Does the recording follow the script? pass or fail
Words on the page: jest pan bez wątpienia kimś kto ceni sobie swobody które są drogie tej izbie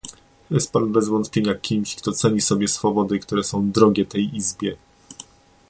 pass